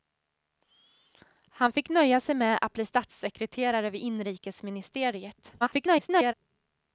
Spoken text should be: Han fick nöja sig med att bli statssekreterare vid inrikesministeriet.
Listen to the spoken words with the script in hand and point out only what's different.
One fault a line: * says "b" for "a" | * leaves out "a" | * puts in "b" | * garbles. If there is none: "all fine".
* garbles